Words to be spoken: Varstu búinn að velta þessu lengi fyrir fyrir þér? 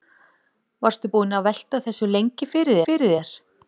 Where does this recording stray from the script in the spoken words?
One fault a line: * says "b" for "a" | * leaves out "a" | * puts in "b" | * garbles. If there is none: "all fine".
all fine